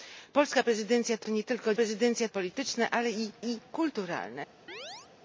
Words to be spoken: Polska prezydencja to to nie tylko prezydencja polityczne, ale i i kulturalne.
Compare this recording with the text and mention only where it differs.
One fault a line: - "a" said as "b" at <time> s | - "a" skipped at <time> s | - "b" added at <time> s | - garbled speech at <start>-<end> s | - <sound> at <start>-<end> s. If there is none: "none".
- chirp at 4.7-5.1 s